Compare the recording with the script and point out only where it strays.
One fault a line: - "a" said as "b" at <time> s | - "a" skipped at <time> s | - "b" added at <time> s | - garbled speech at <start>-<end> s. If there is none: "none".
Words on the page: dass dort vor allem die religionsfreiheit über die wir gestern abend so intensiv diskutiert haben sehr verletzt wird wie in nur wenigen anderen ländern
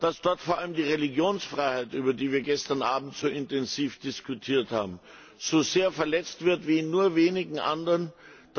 - "so" added at 5.4 s